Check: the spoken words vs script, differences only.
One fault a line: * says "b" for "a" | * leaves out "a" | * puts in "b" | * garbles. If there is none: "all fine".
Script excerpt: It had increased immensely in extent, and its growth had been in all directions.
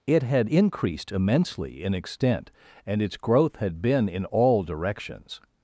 all fine